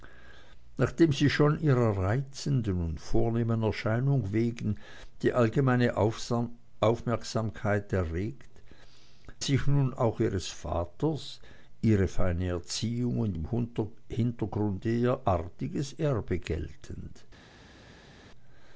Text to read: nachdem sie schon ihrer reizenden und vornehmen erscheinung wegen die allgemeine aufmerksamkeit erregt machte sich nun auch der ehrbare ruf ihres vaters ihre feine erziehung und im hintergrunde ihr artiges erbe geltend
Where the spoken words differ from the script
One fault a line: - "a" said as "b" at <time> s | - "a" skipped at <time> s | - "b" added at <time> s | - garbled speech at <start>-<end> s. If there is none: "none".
- "machte" skipped at 8.5 s
- "der ehrbare ruf" skipped at 10.2 s